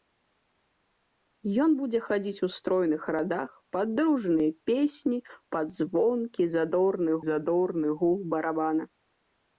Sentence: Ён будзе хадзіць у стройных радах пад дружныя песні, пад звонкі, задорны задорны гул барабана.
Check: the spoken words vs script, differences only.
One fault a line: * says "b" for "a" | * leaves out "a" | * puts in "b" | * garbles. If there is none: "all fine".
all fine